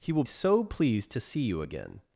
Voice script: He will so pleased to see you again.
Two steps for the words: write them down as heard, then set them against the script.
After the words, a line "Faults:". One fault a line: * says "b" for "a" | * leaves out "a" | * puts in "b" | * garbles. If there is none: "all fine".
He will so pleased to see you again.
Faults:
all fine